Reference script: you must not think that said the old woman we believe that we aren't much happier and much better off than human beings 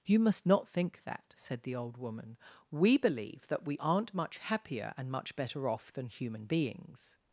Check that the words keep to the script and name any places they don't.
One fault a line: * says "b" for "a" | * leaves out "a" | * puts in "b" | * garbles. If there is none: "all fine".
all fine